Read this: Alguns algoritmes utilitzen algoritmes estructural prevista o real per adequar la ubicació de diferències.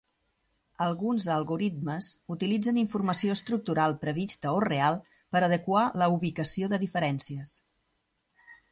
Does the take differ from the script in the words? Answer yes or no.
yes